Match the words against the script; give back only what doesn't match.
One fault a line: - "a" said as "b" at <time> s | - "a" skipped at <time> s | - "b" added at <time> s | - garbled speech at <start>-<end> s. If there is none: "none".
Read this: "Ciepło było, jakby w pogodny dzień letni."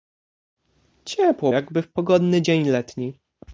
- "było" skipped at 1.5 s